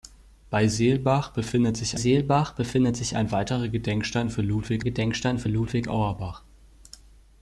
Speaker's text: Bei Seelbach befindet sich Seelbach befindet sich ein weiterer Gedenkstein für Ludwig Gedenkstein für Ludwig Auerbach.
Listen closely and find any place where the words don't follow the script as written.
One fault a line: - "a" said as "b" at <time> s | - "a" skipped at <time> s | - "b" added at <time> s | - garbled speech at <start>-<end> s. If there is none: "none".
none